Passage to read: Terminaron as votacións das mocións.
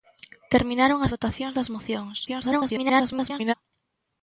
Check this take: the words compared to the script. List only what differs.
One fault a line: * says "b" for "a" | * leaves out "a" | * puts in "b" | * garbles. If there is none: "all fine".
* garbles